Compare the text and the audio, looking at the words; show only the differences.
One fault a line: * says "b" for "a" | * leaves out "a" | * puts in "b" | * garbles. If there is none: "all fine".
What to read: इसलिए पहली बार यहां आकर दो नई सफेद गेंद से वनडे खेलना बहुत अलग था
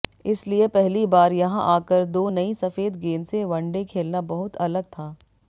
all fine